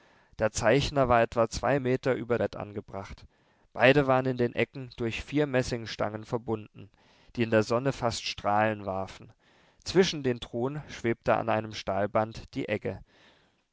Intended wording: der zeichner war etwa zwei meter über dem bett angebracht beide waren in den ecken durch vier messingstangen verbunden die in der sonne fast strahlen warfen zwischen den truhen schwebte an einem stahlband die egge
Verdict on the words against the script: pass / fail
fail